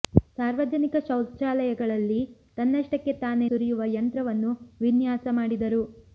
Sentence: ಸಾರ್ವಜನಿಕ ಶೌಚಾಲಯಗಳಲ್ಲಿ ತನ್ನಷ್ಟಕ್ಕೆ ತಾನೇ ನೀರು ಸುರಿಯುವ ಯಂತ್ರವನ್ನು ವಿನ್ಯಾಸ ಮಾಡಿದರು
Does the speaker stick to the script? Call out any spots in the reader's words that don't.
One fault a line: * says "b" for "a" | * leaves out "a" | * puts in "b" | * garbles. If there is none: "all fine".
* leaves out "ನೀರು"